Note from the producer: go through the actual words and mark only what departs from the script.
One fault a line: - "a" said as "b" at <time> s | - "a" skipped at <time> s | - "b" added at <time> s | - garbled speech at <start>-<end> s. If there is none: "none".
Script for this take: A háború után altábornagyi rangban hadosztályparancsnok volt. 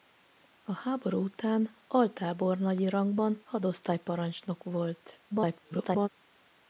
- garbled speech at 5.3-6.1 s